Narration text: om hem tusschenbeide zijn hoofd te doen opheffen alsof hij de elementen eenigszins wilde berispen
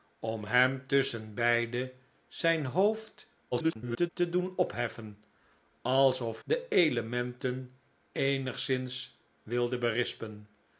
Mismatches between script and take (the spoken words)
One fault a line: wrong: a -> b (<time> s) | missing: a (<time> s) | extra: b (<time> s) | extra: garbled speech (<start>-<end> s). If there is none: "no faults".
extra: garbled speech (3.5-4.1 s)
missing: hij (6.4 s)